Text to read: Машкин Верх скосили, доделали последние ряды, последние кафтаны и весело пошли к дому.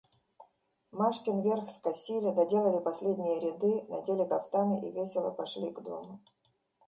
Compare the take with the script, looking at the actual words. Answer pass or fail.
fail